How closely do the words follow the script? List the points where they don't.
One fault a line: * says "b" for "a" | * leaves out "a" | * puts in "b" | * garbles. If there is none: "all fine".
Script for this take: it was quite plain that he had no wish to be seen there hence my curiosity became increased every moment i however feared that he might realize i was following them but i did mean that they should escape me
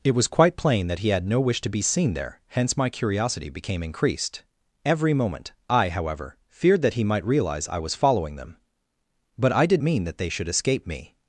all fine